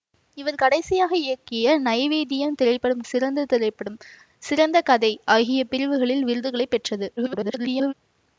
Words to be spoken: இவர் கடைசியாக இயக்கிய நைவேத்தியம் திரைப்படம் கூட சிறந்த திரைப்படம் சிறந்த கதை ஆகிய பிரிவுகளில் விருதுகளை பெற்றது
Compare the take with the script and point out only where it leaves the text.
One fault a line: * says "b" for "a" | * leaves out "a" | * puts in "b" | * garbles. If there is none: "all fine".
* leaves out "கூட"
* garbles